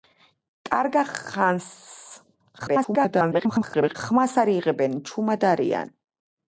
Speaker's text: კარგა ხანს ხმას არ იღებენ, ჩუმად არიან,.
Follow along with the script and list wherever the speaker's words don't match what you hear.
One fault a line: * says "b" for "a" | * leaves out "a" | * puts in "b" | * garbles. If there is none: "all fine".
* garbles